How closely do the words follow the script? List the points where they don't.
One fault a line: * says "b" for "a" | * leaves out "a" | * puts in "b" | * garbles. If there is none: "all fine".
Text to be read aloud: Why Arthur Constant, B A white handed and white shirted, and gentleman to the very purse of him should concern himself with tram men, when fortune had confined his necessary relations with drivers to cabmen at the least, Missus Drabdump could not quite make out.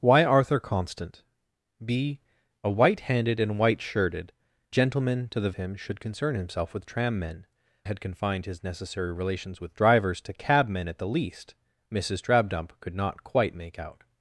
* leaves out "and"
* leaves out "very purse of"
* leaves out "when fortune"